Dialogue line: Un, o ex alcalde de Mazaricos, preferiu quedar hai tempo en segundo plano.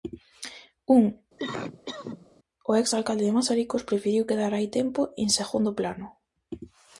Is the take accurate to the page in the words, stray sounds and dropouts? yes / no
no